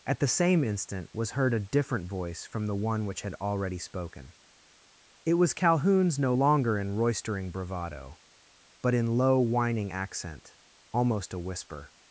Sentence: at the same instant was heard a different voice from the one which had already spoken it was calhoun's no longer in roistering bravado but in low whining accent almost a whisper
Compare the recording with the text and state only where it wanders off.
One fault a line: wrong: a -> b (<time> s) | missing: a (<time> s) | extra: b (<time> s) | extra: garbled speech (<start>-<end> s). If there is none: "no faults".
no faults